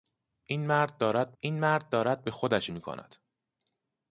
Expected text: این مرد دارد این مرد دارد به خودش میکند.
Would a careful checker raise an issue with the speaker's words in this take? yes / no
no